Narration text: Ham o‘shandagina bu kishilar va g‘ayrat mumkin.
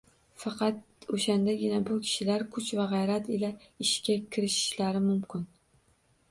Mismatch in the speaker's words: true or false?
true